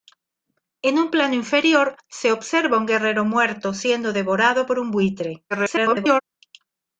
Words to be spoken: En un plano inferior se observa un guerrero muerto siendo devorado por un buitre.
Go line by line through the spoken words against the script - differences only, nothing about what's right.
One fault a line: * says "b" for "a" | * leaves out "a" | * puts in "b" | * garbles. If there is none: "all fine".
* garbles